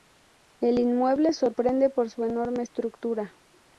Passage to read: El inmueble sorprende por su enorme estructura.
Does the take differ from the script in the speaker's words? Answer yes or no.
no